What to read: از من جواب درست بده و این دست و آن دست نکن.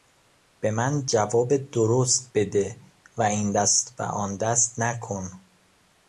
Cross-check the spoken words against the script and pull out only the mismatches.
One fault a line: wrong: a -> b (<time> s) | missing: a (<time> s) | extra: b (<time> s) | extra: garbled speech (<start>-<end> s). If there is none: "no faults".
wrong: از -> به (0.6 s)